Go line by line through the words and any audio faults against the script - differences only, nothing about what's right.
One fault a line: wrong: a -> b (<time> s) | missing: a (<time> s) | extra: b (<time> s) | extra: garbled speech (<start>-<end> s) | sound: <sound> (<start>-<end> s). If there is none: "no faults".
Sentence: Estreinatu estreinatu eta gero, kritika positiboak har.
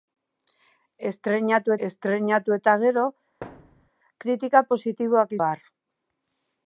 sound: thud (3.4-3.9 s)